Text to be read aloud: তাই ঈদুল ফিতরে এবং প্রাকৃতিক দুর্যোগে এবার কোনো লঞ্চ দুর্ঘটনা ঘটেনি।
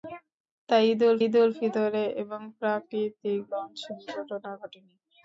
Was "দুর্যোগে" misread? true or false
true